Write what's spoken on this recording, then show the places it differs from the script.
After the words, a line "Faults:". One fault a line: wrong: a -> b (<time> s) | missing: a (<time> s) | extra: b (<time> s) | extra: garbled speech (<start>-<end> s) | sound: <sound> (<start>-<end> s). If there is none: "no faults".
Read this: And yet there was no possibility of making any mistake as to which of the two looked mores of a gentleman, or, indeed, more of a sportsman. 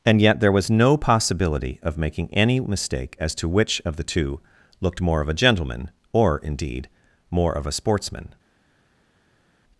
And yet there was no possibility of making any mistake as to which of the two looked more of a gentleman, or, indeed, more of a sportsman.
Faults:
wrong: mores -> more (5.0 s)